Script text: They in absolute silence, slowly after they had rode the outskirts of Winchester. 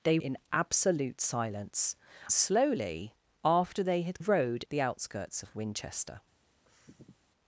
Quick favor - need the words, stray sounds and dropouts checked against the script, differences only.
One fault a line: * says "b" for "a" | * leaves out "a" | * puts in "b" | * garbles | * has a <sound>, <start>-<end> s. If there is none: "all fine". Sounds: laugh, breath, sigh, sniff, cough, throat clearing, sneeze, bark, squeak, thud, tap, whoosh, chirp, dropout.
* has a sniff, 6.7-7.3 s